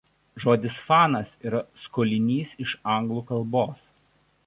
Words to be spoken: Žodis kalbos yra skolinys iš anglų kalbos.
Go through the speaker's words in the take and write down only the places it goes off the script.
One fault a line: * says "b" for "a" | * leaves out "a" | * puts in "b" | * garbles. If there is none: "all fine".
* says "fanas" for "kalbos"